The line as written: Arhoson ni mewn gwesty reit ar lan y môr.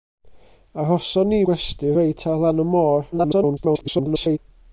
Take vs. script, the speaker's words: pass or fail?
fail